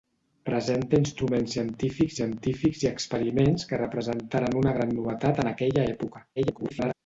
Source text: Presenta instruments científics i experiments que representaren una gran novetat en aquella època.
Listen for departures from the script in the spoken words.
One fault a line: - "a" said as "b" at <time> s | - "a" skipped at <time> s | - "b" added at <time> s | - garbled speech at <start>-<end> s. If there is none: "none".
- "científics" added at 2.2 s
- garbled speech at 6.4-6.9 s